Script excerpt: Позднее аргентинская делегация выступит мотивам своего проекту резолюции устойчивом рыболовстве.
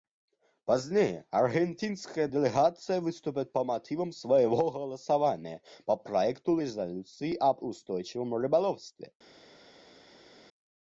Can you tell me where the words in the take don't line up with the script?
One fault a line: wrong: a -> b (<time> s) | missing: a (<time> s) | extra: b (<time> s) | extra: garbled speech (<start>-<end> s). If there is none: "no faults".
extra: по (3.5 s)
extra: голосования по (4.7 s)
extra: об (7.4 s)